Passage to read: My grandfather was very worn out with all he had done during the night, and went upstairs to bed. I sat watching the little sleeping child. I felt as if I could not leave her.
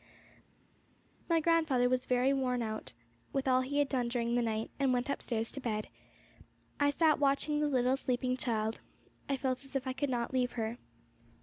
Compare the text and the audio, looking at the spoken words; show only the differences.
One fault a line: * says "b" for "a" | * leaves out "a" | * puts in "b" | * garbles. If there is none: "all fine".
all fine